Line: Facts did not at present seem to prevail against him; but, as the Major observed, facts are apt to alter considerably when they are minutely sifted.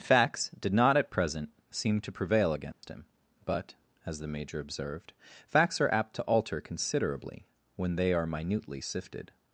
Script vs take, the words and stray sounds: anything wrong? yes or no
yes